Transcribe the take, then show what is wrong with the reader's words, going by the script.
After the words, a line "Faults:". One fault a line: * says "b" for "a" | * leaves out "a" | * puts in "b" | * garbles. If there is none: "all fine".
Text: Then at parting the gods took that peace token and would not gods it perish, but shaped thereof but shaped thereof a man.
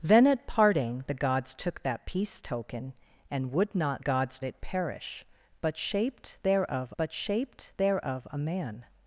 Then at parting the gods took that peace token and would not gods it perish, but shaped thereof but shaped thereof a man.
Faults:
all fine